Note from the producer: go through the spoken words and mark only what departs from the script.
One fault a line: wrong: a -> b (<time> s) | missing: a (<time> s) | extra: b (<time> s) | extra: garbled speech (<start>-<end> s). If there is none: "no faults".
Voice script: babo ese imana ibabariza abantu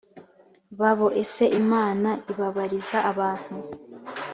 no faults